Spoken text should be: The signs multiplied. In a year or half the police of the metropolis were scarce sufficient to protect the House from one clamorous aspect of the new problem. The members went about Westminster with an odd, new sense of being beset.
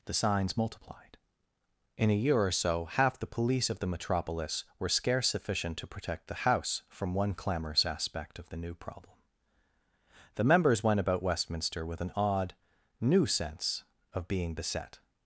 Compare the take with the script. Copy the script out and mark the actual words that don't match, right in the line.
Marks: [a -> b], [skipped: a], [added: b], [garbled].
The signs multiplied. In a year or [added: so] half the police of the metropolis were scarce sufficient to protect the House from one clamorous aspect of the new problem. The members went about Westminster with an odd, new sense of being beset.